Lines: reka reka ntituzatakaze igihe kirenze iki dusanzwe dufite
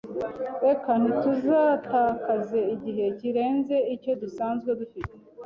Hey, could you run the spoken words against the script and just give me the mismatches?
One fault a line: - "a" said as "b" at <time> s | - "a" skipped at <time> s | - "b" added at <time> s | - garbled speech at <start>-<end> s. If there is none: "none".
- "reka" skipped at 0.9 s
- "iki" said as "icyo" at 4.0 s